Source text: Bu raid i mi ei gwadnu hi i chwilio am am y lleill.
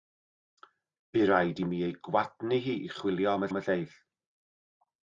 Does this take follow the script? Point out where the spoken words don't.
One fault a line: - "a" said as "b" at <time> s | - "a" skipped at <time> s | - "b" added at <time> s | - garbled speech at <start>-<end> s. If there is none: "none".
none